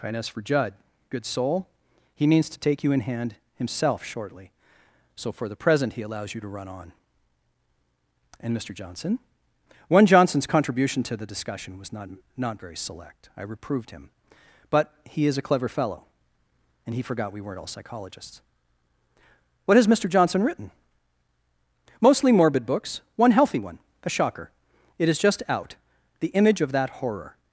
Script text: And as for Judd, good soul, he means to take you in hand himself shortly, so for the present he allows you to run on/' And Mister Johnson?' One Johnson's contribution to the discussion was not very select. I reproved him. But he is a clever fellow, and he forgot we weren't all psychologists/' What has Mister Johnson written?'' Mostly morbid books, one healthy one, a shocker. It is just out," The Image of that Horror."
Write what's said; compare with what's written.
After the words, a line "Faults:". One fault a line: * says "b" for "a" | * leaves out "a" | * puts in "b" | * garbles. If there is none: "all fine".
And as for Judd, good soul, he means to take you in hand himself shortly, so for the present he allows you to run on/' And Mister Johnson?' One Johnson's contribution to the discussion was not not very select. I reproved him. But he is a clever fellow, and he forgot we weren't all psychologists/' What has Mister Johnson written?'' Mostly morbid books, one healthy one, a shocker. It is just out," The Image of that Horror."
Faults:
* puts in "not"